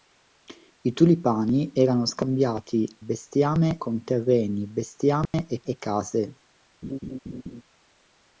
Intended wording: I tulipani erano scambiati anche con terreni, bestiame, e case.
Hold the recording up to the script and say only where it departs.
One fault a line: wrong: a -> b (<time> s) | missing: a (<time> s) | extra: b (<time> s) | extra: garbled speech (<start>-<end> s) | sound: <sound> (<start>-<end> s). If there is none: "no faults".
wrong: anche -> bestiame (3.0 s)
sound: dropout (5.3-5.3 s)
extra: e (5.6 s)
sound: laugh (6.8-7.6 s)